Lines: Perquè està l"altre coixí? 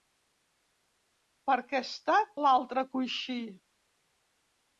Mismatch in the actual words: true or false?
false